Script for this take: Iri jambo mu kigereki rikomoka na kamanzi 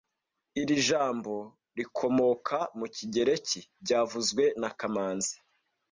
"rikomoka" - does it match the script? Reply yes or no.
no